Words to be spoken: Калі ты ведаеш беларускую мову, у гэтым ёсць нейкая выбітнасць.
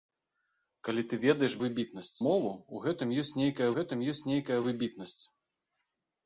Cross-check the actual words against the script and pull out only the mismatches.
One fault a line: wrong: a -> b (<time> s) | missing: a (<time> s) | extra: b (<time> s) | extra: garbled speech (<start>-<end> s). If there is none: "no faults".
wrong: беларускую -> выбітнасць (1.7 s)
extra: гэтым ёсць нейкая (3.8 s)